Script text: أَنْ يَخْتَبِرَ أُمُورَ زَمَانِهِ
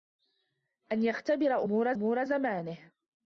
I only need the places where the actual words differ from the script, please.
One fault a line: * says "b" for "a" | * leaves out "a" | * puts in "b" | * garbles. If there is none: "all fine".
* puts in "أُمُورَ"